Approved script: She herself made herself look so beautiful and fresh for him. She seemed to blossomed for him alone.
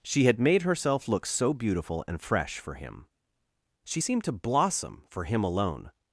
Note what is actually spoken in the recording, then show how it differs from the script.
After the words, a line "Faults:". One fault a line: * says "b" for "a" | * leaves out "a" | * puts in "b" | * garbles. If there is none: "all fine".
She had made herself look so beautiful and fresh for him. She seemed to blossom for him alone.
Faults:
* says "had" for "herself"
* says "blossom" for "blossomed"